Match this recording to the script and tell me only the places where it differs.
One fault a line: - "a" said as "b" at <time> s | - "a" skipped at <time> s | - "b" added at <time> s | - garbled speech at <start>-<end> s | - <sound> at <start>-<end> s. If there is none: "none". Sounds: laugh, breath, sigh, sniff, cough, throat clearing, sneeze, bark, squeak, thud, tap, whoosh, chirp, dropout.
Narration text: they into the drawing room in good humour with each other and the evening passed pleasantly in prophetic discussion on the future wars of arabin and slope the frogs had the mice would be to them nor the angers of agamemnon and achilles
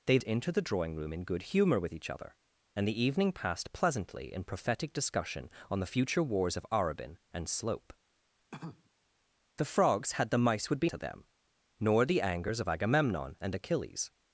- cough at 8.5-8.9 s